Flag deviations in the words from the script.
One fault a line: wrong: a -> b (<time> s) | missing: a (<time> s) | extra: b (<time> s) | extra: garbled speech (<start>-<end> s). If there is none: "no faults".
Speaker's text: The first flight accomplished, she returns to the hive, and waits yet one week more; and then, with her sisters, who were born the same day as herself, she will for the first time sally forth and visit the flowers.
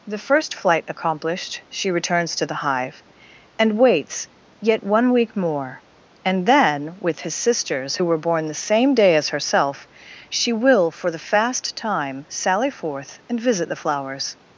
wrong: her -> his (7.2 s)
wrong: first -> fast (11.2 s)